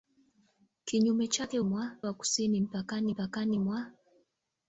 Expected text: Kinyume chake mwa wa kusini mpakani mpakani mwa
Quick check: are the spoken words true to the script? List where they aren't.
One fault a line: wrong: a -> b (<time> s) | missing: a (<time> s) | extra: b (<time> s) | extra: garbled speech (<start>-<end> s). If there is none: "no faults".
no faults